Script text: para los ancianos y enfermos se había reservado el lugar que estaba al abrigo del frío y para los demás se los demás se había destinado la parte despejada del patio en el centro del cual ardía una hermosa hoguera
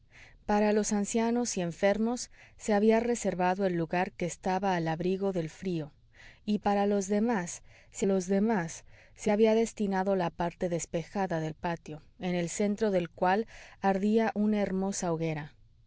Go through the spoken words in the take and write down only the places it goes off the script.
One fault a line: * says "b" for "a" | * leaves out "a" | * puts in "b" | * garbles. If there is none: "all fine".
all fine